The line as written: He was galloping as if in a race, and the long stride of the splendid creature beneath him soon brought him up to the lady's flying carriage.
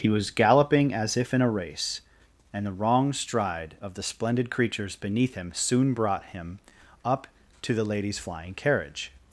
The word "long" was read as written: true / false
false